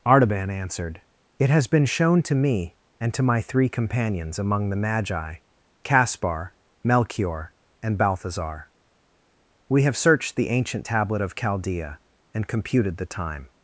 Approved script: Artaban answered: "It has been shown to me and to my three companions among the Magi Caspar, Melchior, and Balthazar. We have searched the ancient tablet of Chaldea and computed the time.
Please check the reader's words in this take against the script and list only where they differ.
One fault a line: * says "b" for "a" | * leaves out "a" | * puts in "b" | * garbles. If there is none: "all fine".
all fine